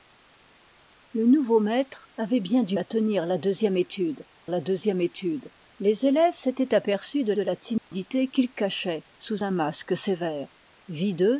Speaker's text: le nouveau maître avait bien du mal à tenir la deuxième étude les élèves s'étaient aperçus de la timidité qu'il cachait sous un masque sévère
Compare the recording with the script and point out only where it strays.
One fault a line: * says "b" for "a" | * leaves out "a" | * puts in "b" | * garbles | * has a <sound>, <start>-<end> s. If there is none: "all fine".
* leaves out "mal"
* puts in "la deuxième étude"
* puts in "de"
* has a dropout, 7.8-7.9 s